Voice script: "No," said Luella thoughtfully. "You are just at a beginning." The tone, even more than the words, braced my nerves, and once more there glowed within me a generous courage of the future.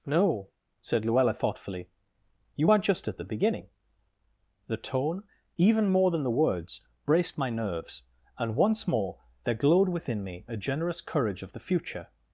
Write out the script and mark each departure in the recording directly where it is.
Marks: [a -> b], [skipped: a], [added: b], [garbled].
"No," said Luella thoughtfully. "You are just at [a -> the] beginning." The tone, even more than the words, braced my nerves, and once more there glowed within me a generous courage of the future.